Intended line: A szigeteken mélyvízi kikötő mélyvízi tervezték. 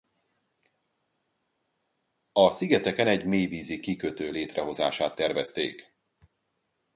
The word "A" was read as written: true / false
true